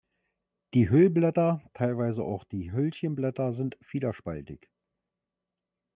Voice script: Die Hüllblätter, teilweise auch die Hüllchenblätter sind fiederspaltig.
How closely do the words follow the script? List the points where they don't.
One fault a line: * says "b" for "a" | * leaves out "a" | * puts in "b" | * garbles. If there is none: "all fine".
all fine